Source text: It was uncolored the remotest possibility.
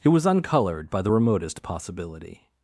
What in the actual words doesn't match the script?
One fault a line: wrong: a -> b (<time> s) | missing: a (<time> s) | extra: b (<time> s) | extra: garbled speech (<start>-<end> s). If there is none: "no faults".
extra: by (0.9 s)